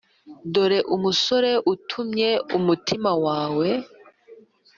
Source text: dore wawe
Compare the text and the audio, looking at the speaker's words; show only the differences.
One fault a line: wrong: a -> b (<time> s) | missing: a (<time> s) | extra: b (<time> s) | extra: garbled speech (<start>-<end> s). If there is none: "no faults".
extra: umusore utumye umutima (0.9 s)